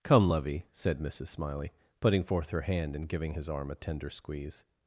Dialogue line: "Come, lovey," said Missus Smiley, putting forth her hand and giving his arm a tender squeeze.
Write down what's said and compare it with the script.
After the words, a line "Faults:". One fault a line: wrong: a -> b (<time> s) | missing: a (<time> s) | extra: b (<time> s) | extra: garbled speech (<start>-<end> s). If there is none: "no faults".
"Come, lovey," said Missus Smiley, putting forth her hand and giving his arm a tender squeeze.
Faults:
no faults